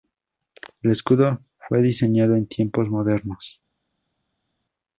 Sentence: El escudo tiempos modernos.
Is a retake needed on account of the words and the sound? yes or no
yes